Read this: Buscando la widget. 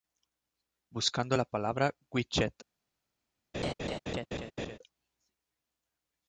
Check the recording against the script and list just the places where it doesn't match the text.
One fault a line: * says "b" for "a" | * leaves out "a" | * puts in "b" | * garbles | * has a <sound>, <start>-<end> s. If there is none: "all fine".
* puts in "palabra"
* has a laugh, 3.5-4.8 s